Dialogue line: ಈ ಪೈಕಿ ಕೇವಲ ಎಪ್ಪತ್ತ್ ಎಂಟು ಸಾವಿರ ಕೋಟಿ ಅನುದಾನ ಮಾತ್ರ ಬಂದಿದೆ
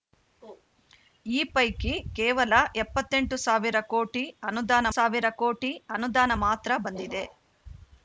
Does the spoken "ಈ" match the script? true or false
true